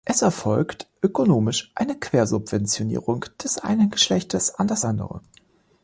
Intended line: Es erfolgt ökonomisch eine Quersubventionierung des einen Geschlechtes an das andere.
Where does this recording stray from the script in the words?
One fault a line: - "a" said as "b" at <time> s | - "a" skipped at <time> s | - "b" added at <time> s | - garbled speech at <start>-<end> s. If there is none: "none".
none